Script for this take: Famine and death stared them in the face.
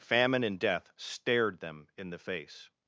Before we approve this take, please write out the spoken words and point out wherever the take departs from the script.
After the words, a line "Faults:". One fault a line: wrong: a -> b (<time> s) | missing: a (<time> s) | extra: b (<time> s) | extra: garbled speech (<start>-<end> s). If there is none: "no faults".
Famine and death stared them in the face.
Faults:
no faults